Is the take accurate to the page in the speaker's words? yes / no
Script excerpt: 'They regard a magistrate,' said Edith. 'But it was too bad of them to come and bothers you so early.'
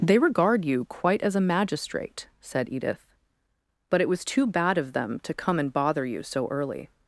no